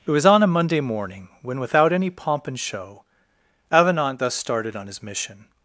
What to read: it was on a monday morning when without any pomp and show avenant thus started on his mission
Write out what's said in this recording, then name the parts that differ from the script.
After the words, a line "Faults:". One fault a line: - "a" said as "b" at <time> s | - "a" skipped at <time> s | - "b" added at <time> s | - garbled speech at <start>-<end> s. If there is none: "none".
it was on a monday morning when without any pomp and show avenant thus started on his mission
Faults:
none